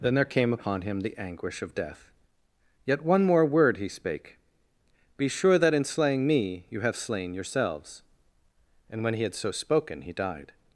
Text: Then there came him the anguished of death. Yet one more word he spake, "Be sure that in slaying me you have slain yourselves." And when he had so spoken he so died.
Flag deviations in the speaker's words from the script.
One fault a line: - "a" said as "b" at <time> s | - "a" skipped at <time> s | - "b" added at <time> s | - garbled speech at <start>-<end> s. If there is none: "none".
- "upon" added at 0.5 s
- "anguished" said as "anguish" at 1.2 s
- "so" skipped at 10.1 s